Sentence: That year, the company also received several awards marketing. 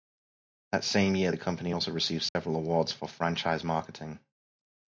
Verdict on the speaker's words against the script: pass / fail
fail